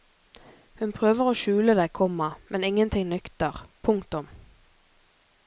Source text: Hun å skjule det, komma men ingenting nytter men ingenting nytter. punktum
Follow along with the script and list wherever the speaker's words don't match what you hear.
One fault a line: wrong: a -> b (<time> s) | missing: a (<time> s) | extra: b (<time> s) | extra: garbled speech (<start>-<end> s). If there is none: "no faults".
extra: prøver (0.9 s)
missing: men ingenting nytter (3.7 s)